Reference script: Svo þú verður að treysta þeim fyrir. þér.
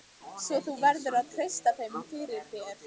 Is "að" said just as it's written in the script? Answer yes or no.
yes